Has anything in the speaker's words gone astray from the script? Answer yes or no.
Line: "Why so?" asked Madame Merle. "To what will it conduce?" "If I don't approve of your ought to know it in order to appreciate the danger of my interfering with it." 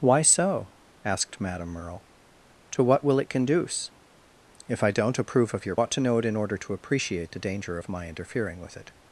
no